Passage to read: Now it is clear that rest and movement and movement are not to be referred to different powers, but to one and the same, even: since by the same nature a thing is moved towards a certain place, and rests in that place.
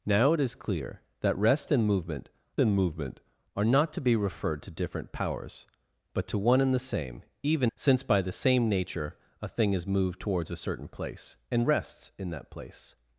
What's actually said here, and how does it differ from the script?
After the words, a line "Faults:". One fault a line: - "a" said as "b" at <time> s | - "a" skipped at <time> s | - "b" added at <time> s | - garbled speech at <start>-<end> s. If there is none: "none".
Now it is clear that rest and movement and movement are not to be referred to different powers, but to one and the same, even: since by the same nature a thing is moved towards a certain place, and rests in that place.
Faults:
none